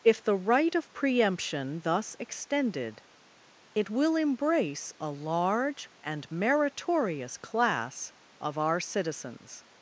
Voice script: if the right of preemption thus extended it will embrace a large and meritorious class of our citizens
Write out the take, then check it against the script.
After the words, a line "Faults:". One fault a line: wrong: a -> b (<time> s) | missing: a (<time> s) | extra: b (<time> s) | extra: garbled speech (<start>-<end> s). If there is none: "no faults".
if the right of preemption thus extended it will embrace a large and meritorious class of our citizens
Faults:
no faults